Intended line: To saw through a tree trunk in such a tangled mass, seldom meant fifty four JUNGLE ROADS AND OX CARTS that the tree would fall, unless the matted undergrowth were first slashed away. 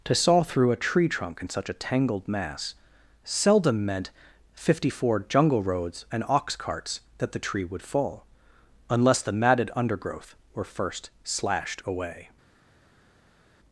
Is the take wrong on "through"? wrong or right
right